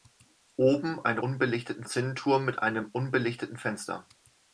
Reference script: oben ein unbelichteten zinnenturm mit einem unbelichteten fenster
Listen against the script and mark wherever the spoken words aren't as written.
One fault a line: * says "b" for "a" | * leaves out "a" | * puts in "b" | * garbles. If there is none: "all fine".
all fine